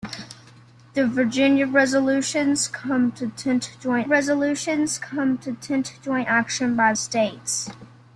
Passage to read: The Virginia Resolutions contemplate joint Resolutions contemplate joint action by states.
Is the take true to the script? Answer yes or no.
yes